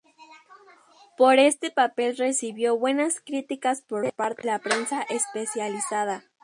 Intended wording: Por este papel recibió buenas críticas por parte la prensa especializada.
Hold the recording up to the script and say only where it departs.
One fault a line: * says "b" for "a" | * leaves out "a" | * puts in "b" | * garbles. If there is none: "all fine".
all fine